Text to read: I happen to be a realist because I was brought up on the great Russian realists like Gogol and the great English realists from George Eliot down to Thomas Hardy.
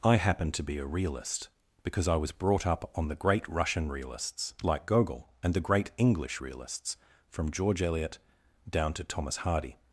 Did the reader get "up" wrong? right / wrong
right